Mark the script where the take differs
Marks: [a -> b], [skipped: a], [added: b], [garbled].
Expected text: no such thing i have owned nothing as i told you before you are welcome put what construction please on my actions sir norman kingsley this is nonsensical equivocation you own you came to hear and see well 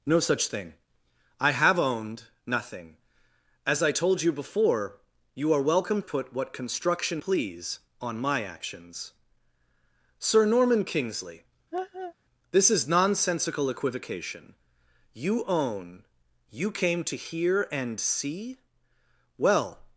no such thing i have owned nothing as i told you before you are welcome put what construction please on my actions sir norman kingsley this is nonsensical equivocation you own you came to hear and see well